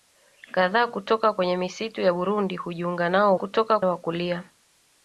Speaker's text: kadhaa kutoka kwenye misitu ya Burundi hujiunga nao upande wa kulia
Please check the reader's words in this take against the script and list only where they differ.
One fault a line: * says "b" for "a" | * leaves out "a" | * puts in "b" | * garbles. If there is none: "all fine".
* says "kutoka" for "upande"